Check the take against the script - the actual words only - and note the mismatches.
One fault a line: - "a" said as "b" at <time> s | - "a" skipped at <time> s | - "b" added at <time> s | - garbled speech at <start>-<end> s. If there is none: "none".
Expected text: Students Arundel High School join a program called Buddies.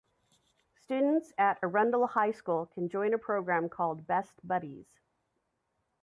- "at" added at 1.4 s
- "can" added at 2.6 s
- "Best" added at 4.1 s